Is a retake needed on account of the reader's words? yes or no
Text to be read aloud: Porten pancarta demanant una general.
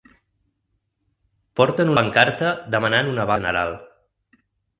no